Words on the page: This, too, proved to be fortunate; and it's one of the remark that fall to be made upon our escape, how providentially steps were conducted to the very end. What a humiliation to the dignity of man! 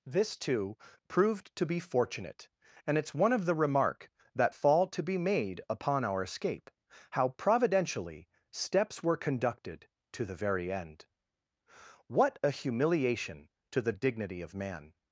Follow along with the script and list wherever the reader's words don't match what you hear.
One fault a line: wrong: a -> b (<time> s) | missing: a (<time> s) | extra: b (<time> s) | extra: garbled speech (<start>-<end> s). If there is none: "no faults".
no faults